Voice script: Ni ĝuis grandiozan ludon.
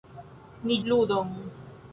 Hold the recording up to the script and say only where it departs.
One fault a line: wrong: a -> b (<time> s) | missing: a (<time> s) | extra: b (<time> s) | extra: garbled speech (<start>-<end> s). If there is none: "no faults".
missing: ĝuis grandiozan (0.8 s)